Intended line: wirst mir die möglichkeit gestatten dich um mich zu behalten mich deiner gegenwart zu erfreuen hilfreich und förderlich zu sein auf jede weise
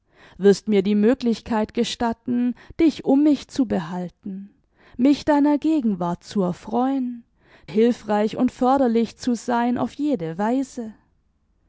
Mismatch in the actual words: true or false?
false